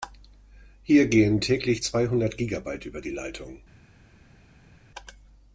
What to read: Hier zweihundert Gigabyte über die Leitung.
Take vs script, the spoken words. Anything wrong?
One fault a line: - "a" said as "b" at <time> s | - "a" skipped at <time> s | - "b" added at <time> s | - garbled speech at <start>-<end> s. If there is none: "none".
- "gehen täglich" added at 1.1 s